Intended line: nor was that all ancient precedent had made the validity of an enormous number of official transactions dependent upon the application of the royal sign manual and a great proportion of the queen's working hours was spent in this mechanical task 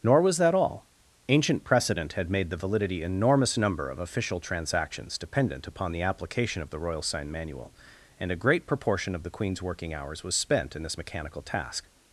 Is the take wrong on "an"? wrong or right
wrong